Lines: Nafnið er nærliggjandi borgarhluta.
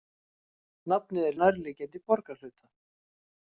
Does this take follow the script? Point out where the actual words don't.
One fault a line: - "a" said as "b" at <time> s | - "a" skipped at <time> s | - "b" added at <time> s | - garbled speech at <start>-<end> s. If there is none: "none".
none